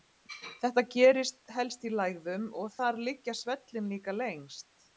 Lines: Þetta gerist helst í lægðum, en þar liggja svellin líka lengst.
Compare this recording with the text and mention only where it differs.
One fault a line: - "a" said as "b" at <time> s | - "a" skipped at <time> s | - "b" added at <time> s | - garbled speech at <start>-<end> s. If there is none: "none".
- "en" said as "og" at 2.6 s